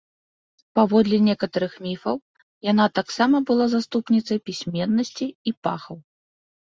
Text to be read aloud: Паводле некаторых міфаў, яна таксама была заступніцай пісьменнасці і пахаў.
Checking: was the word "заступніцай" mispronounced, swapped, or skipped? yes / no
no